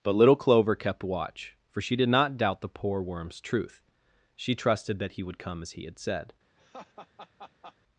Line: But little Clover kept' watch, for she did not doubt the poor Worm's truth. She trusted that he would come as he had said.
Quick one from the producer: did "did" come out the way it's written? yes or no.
yes